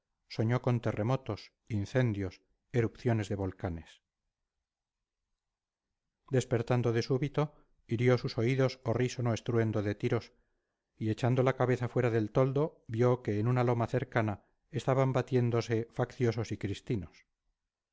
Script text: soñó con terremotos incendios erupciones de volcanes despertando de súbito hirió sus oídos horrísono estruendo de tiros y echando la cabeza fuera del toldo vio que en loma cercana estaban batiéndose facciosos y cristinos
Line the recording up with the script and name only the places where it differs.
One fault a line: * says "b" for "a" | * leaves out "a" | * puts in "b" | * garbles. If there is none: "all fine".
* puts in "una"